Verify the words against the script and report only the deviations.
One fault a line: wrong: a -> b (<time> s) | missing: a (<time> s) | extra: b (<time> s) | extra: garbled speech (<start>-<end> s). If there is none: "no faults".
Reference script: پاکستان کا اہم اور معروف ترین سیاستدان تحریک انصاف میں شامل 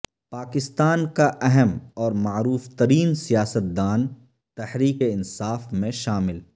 no faults